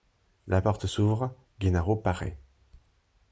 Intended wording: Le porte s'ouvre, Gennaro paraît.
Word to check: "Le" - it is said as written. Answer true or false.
false